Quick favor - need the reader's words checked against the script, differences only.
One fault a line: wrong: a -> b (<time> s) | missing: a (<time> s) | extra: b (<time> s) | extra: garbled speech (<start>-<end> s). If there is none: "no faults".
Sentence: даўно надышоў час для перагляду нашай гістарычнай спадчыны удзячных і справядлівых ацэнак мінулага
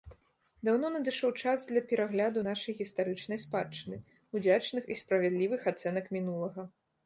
no faults